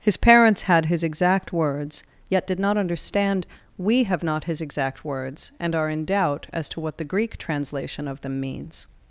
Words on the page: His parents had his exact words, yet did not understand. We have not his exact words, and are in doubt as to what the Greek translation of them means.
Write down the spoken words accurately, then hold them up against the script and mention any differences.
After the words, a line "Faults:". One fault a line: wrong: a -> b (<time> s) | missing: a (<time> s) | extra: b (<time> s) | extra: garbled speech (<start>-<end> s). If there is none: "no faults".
His parents had his exact words, yet did not understand. We have not his exact words, and are in doubt as to what the Greek translation of them means.
Faults:
no faults